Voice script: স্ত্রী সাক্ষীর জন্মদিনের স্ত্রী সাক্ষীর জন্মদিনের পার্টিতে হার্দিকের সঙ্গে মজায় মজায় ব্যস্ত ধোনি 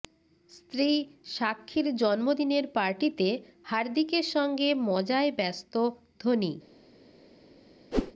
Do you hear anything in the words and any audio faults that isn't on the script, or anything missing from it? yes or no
yes